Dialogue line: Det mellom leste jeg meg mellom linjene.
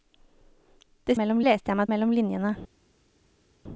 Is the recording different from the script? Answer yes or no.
no